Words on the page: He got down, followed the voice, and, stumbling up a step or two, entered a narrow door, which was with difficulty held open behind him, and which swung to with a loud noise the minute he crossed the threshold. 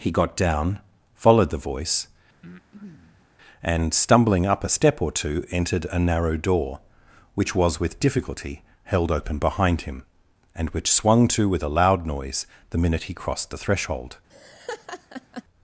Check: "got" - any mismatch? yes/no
no